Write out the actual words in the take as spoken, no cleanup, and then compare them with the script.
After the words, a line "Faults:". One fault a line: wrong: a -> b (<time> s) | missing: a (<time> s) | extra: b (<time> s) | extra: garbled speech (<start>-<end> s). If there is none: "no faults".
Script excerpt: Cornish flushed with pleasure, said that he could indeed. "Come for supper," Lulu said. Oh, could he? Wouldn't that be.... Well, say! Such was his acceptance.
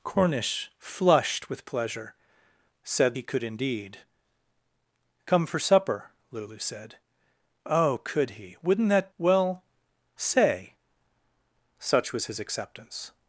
Cornish flushed with pleasure, said he could indeed. "Come for supper," Lulu said. Oh, could he? Wouldn't that.... Well, say! Such was his acceptance.
Faults:
missing: that (3.2 s)
missing: be (9.1 s)